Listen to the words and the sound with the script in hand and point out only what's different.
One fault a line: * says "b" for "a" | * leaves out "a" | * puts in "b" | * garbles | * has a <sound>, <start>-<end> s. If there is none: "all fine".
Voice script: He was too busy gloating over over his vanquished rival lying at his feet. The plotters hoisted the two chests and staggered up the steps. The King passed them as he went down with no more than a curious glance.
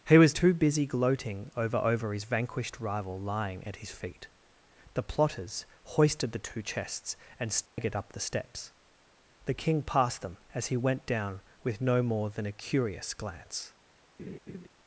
* has a dropout, 7.7-7.8 s
* has a laugh, 14.2-14.7 s